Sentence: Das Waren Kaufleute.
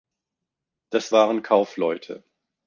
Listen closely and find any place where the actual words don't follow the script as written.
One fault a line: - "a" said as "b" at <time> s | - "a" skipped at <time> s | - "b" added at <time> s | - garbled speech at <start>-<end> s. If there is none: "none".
none